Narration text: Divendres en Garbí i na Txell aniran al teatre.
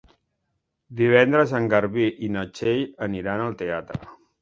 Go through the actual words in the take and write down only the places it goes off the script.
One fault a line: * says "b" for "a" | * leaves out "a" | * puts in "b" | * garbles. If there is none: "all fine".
all fine